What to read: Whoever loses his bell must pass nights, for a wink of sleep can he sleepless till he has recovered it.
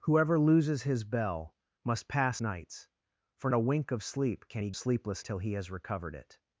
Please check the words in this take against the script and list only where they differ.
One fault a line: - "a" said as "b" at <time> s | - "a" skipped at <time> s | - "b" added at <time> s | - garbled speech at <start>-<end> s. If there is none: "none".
none